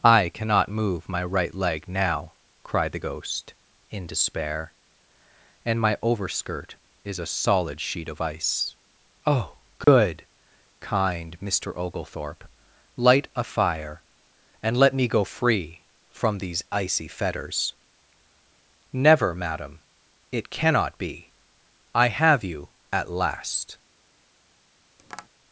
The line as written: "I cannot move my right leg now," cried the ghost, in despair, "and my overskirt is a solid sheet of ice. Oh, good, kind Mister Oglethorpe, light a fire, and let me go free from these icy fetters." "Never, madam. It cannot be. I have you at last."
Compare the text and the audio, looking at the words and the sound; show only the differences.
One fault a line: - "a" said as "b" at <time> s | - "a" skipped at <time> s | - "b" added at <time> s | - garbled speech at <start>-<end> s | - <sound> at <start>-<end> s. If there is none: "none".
- dropout at 9.8-9.9 s
- tap at 25.0-25.3 s